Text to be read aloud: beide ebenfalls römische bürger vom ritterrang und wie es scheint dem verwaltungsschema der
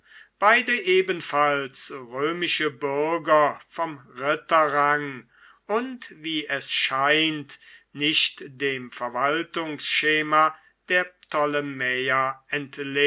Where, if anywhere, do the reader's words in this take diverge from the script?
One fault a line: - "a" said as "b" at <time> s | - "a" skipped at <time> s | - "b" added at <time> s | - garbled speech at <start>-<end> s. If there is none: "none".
- "nicht" added at 7.9 s